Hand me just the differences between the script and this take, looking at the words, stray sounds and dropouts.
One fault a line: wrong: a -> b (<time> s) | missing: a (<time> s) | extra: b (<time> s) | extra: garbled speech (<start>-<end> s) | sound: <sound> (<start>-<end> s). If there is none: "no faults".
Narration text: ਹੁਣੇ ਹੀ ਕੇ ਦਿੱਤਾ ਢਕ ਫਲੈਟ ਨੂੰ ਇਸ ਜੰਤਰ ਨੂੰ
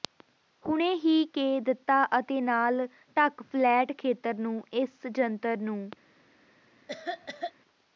extra: ਅਤੇ ਨਾਲ (2.2 s)
extra: ਖੇਤਰ (4.0 s)
sound: cough (6.9-7.5 s)